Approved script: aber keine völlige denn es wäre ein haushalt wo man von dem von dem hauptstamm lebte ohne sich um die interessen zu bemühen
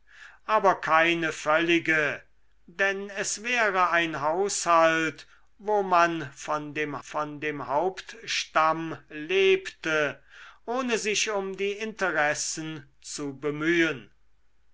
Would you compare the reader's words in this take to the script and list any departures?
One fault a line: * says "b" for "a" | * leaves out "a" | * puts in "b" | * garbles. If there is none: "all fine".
all fine